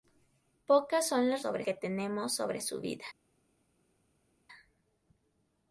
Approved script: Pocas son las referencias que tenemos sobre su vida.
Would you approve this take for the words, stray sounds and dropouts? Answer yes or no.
no